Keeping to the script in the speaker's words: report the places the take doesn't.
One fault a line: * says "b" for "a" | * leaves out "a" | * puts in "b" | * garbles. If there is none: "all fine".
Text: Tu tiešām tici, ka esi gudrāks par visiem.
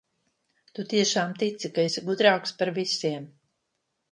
all fine